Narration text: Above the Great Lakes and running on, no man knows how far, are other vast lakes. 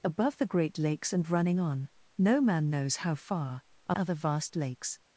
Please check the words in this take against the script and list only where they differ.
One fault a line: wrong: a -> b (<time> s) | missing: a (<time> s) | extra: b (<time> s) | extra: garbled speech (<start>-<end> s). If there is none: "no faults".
no faults